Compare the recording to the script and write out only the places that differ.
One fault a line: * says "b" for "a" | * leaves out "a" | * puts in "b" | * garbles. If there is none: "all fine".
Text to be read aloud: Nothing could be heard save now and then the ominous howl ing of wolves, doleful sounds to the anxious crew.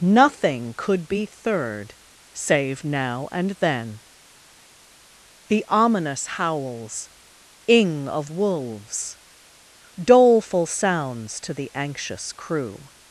* says "third" for "heard"
* says "howls" for "howl"